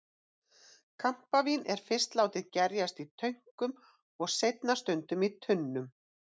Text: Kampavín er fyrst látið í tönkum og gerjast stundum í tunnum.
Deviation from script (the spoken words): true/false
true